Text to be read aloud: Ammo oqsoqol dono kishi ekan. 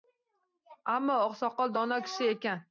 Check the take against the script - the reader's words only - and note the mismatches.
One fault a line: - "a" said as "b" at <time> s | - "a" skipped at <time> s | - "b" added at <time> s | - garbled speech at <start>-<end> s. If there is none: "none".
none